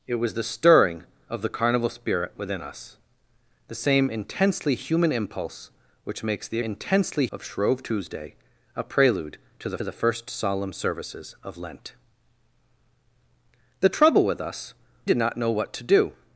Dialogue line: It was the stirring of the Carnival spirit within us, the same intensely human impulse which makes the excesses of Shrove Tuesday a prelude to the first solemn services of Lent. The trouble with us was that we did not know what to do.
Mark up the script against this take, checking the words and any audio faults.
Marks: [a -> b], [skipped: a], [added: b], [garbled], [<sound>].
It was the stirring of the Carnival spirit within us, the same intensely human impulse which makes the [excesses -> intensely] of Shrove Tuesday a prelude to the [added: the] first solemn services of Lent. The trouble with us [skipped: was that we] did not know what to do.